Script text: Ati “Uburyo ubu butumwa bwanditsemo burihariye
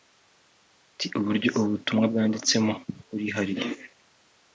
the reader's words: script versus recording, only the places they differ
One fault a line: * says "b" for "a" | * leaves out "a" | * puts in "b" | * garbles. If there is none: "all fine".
all fine